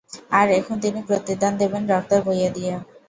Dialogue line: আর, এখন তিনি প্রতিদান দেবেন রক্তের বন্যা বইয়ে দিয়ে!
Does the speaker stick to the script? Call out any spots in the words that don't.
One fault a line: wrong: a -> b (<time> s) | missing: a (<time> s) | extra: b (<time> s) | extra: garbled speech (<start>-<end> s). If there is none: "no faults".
missing: বন্যা (2.2 s)